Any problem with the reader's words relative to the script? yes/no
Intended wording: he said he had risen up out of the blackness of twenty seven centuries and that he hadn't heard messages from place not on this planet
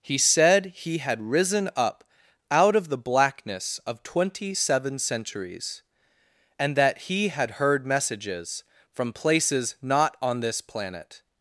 yes